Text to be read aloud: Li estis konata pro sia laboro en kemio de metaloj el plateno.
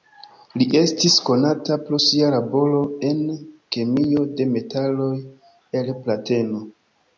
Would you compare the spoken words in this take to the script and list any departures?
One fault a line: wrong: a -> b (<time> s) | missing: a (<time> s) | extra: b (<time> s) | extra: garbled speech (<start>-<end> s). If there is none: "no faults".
no faults